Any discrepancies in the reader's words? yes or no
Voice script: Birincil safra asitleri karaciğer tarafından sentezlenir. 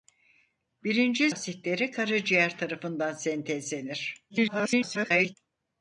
yes